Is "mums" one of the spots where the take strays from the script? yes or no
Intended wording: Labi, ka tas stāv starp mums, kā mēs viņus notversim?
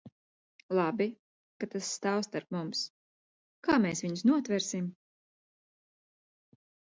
no